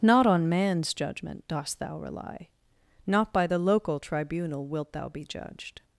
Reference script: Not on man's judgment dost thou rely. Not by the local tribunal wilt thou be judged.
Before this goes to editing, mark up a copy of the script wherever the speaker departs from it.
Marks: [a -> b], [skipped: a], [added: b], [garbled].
Not on man's judgment dost thou rely. Not by the local tribunal wilt thou be judged.